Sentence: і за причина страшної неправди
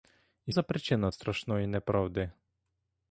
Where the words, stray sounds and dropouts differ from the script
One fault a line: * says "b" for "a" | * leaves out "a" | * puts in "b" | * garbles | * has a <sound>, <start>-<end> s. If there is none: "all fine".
all fine